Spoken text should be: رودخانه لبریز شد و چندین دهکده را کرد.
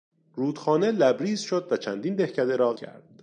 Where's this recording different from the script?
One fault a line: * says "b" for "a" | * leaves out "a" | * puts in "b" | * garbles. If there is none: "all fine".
all fine